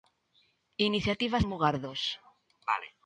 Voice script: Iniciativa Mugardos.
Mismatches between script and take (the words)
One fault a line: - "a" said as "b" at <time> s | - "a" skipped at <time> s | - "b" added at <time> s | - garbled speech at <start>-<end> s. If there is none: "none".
none